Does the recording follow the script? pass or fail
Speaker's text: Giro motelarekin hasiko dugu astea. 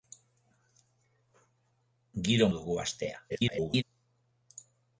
fail